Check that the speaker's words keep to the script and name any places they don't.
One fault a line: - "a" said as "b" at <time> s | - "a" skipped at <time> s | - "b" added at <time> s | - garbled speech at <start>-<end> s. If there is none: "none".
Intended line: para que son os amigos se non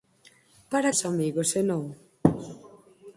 - "que son" skipped at 0.9 s